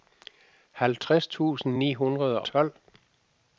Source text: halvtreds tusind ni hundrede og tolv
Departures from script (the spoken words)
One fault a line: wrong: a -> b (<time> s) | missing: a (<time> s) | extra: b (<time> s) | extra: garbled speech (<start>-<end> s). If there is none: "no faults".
missing: og (2.4 s)